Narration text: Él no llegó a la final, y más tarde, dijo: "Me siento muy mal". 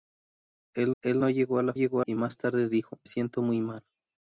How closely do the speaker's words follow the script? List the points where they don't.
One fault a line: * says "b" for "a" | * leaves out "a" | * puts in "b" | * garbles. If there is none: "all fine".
* puts in "él"
* says "llegó" for "final"
* leaves out "Me"